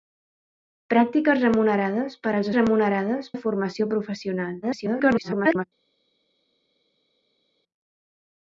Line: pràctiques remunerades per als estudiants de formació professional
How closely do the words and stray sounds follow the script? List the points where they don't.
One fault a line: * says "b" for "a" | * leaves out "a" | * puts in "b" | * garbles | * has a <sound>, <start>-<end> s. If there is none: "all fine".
* says "remunerades" for "estudiants"
* garbles